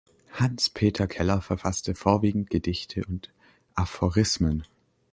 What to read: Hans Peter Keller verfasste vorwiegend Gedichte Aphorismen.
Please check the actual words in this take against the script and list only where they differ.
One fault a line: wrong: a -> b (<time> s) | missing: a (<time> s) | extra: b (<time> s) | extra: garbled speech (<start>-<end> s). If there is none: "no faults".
extra: und (3.1 s)